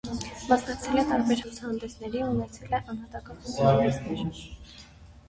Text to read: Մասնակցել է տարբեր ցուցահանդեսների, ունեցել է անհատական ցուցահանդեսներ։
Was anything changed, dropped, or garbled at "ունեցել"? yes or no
no